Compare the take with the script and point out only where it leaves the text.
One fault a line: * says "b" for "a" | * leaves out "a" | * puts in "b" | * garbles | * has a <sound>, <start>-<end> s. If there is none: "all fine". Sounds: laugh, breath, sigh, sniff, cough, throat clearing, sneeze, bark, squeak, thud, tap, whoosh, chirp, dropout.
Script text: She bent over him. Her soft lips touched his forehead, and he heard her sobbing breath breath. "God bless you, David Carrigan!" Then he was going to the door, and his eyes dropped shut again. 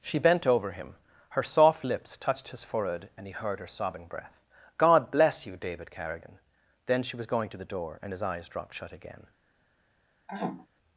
* leaves out "breath"
* says "she" for "he"
* has a throat clearing, 10.3-10.7 s